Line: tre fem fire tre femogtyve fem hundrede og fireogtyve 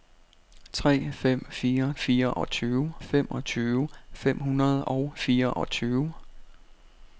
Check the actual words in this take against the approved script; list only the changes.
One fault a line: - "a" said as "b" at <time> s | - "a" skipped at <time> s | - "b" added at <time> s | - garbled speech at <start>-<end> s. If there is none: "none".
- "tre" said as "fireogtyve" at 2.0 s